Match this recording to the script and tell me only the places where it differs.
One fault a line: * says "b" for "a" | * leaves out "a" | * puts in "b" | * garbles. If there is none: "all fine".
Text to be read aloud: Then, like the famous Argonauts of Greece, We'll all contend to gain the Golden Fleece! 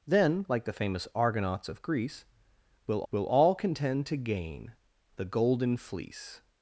* puts in "We'll"